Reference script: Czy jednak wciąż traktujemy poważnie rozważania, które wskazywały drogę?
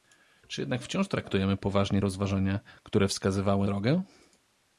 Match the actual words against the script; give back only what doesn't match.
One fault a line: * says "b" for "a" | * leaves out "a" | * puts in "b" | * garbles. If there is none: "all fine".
all fine